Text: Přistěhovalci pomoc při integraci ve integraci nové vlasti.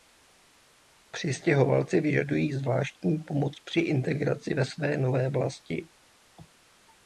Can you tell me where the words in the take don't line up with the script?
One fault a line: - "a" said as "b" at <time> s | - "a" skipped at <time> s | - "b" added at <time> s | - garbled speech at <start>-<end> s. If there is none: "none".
- "vyžadují zvláštní" added at 2.0 s
- "integraci" said as "své" at 4.7 s